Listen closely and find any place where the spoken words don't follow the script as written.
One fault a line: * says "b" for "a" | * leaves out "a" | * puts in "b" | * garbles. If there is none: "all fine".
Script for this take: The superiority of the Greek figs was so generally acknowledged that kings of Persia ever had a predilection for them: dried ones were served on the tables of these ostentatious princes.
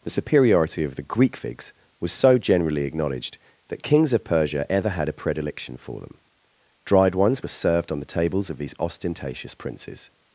all fine